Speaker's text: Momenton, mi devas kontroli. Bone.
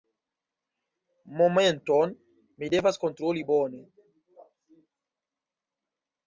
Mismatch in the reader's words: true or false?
false